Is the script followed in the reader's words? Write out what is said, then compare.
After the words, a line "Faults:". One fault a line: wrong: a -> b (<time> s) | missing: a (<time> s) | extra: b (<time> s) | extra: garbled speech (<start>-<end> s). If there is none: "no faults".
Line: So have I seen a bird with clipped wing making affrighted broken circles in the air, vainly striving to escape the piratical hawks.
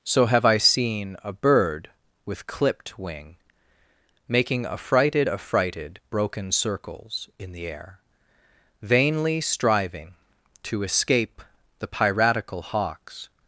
So have I seen a bird with clipped wing making affrighted affrighted broken circles in the air, vainly striving to escape the piratical hawks.
Faults:
extra: affrighted (5.3 s)